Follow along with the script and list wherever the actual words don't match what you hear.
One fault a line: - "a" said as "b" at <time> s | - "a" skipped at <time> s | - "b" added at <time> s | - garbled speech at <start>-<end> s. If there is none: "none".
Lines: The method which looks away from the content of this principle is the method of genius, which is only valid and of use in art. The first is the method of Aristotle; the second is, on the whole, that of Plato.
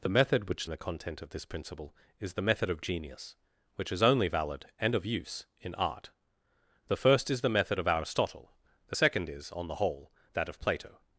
- "looks away from" skipped at 0.7 s